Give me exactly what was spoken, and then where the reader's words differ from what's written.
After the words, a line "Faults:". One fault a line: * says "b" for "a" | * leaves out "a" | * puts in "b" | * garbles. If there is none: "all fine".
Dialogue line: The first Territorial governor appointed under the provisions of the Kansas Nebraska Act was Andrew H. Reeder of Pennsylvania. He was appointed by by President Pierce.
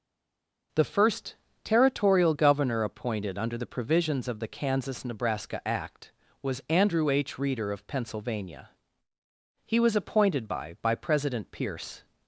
The first Territorial governor appointed under the provisions of the Kansas Nebraska Act was Andrew H. Reeder of Pennsylvania. He was appointed by by President Pierce.
Faults:
all fine